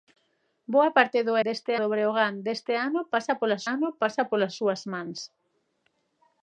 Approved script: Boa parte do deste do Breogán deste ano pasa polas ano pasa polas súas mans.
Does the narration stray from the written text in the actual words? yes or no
no